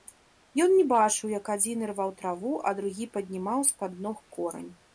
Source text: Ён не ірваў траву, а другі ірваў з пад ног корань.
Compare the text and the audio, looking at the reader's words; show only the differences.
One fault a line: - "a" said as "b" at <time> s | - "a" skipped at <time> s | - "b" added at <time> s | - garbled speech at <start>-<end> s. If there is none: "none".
- "бачыў як адзін" added at 0.9 s
- "ірваў" said as "паднімаў" at 3.2 s